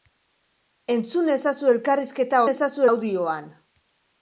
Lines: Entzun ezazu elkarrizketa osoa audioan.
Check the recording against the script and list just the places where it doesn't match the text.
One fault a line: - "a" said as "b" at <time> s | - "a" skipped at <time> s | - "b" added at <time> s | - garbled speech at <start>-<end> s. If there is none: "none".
- "osoa" said as "ezazu" at 2.5 s